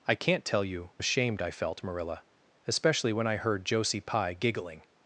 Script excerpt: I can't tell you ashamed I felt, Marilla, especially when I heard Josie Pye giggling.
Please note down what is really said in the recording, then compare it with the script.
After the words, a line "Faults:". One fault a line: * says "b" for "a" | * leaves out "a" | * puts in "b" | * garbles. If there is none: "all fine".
I can't tell you ashamed I felt, Marilla, especially when I heard Josie Pye giggling.
Faults:
all fine